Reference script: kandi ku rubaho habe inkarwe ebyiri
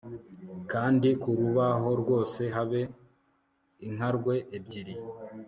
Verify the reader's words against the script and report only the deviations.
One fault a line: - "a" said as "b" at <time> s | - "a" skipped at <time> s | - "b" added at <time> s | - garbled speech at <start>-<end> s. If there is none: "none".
- "rwose" added at 2.0 s